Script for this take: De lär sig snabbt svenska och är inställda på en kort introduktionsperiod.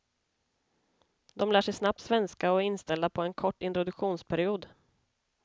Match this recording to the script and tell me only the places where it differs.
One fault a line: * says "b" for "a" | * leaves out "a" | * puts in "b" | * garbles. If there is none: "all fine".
all fine